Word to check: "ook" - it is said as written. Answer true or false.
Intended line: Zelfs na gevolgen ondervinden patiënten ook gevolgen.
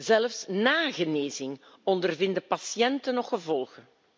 false